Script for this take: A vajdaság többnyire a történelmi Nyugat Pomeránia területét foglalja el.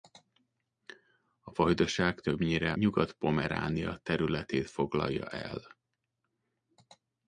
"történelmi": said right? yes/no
no